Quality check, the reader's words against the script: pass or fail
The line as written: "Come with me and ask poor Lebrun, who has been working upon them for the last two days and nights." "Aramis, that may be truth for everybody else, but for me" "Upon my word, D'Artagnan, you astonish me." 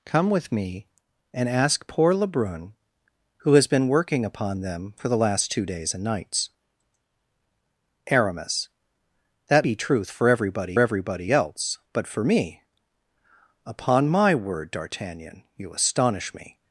fail